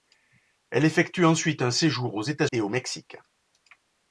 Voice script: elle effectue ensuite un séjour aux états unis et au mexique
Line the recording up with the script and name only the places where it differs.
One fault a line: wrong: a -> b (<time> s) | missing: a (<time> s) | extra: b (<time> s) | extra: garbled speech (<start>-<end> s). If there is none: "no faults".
missing: unis (2.5 s)